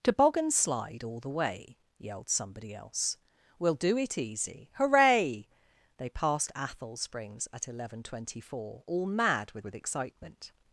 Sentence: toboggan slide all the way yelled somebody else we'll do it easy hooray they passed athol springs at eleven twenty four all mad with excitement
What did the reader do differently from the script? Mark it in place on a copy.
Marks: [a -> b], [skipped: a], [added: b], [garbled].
toboggan slide all the way yelled somebody else we'll do it easy hooray they passed athol springs at eleven twenty four all mad with [added: with] excitement